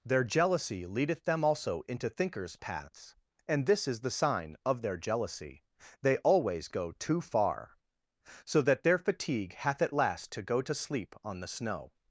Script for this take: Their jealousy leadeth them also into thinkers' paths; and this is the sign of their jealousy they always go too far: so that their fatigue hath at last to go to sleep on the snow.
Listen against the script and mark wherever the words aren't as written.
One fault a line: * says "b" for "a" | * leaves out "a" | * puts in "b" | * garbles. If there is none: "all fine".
all fine